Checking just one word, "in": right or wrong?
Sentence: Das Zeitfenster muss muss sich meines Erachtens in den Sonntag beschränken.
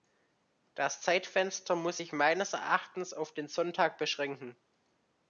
wrong